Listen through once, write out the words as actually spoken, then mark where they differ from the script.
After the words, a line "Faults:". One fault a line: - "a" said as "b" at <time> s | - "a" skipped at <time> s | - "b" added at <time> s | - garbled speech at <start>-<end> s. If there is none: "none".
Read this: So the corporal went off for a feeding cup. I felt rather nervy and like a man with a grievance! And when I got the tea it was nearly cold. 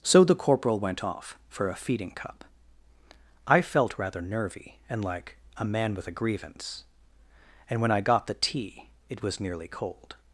So the corporal went off for a feeding cup. I felt rather nervy and like a man with a grievance! And when I got the tea it was nearly cold.
Faults:
none